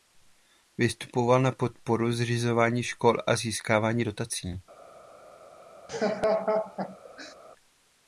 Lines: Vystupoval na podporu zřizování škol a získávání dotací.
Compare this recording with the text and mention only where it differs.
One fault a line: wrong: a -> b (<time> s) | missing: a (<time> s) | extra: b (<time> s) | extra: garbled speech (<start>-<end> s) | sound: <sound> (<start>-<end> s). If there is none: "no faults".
sound: laugh (5.9-7.4 s)